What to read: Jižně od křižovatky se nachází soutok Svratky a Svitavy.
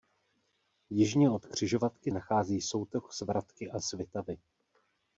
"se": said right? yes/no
no